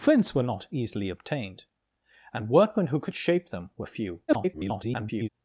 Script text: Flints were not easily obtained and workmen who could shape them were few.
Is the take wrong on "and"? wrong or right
right